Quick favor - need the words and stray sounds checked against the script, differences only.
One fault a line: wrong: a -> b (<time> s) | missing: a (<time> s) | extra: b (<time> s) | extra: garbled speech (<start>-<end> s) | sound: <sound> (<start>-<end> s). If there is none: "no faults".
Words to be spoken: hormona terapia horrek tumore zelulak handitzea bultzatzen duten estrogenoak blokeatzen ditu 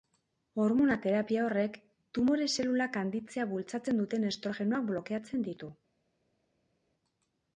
no faults